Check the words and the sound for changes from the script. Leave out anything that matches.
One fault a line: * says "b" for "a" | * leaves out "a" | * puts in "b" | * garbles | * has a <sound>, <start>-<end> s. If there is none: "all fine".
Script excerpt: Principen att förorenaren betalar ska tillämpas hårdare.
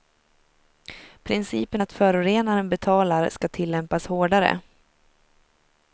all fine